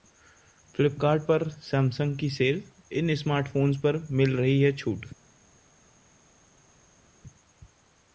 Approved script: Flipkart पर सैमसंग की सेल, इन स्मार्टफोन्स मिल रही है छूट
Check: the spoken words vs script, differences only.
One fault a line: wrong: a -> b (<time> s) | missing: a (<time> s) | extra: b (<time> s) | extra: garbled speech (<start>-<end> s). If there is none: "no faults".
extra: पर (3.8 s)